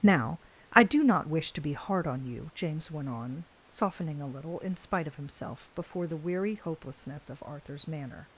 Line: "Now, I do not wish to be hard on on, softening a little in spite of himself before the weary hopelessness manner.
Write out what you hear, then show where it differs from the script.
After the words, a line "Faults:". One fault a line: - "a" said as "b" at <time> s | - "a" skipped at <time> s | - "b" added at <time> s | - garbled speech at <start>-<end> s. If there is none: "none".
"Now, I do not wish to be hard on you," James went on, softening a little in spite of himself before the weary hopelessness of Arthur's manner.
Faults:
- "you James went" added at 2.2 s
- "of Arthur's" added at 7.3 s